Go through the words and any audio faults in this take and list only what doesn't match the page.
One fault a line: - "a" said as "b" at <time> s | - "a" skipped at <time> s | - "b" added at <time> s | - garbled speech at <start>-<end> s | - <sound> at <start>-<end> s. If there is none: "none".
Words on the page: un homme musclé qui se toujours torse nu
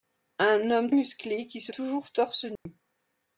- dropout at 2.6-2.7 s